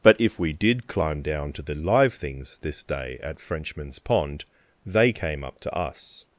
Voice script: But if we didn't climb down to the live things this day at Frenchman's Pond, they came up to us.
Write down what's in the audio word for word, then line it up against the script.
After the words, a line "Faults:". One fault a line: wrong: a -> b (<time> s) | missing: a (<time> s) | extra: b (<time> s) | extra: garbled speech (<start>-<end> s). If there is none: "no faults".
But if we did climb down to the live things this day at Frenchman's Pond, they came up to us.
Faults:
wrong: didn't -> did (0.5 s)